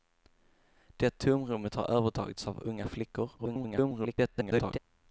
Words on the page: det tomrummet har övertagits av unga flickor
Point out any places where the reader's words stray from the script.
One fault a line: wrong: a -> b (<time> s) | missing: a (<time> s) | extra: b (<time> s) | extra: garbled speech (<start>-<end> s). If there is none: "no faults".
extra: garbled speech (3.4-4.8 s)